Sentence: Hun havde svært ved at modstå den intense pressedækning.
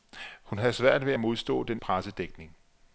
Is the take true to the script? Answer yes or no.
no